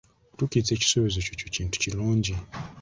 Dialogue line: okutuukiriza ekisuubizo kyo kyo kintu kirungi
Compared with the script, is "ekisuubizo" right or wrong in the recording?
right